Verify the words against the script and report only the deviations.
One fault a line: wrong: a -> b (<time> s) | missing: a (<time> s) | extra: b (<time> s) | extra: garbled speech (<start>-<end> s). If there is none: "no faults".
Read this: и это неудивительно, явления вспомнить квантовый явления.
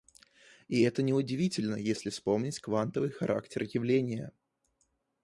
wrong: явления -> если (1.7 s)
extra: характер (3.1 s)